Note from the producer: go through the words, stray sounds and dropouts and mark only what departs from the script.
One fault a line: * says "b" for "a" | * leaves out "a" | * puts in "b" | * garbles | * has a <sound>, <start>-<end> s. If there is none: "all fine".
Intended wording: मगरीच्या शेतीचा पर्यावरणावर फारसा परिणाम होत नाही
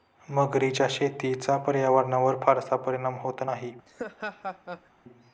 * has a laugh, 3.9-4.9 s